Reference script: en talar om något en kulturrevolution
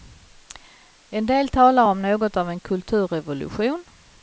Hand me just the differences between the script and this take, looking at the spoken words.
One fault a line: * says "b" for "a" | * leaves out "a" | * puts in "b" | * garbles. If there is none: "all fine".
* puts in "del"
* puts in "av"